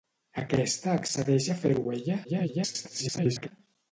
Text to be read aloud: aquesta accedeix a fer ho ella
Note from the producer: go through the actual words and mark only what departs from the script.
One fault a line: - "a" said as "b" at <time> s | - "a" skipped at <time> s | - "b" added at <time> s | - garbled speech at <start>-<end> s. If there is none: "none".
- garbled speech at 2.2-3.5 s